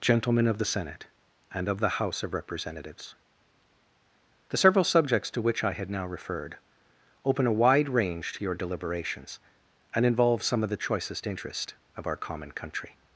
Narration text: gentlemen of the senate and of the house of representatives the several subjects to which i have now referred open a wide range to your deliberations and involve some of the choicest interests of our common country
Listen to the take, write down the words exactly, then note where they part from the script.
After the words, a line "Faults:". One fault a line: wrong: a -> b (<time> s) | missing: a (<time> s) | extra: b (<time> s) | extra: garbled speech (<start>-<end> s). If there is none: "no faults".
gentlemen of the senate and of the house of representatives the several subjects to which i had now referred open a wide range to your deliberations and involve some of the choicest interest of our common country
Faults:
wrong: have -> had (5.7 s)
wrong: interests -> interest (11.3 s)